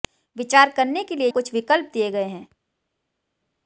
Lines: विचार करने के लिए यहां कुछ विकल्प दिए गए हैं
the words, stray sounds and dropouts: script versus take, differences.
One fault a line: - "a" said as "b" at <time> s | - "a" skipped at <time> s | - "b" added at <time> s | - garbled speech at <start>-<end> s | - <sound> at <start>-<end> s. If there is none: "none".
- "यहां" skipped at 1.3 s